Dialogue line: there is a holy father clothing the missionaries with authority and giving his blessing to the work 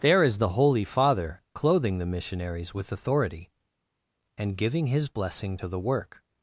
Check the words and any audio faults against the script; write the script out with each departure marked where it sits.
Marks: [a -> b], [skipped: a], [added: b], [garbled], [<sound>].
there is [a -> the] holy father clothing the missionaries with authority and giving his blessing to the work